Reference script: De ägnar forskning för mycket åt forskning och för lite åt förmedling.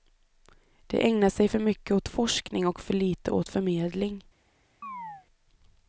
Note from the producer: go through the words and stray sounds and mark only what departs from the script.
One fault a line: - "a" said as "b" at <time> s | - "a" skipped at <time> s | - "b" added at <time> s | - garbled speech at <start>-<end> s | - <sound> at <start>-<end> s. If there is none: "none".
- "forskning" said as "sig" at 1.3 s
- chirp at 4.8-5.3 s